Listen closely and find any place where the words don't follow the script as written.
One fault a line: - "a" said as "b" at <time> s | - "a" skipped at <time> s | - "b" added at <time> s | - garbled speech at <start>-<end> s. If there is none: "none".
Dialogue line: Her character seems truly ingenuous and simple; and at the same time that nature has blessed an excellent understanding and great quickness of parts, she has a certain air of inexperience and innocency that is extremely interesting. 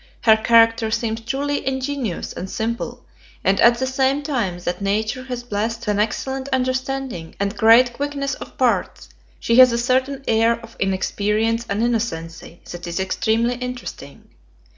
none